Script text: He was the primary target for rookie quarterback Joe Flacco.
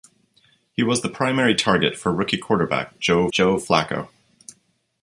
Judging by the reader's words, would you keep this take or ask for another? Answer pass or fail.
fail